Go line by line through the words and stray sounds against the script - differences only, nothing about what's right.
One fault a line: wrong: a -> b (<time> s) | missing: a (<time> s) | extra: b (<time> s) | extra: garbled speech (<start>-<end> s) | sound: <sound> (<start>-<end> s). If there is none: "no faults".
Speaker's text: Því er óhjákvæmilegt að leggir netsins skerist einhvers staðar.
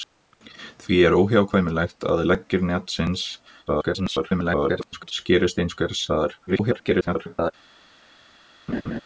extra: garbled speech (3.7-5.1 s)
extra: garbled speech (6.5-7.5 s)
sound: laugh (8.7-9.0 s)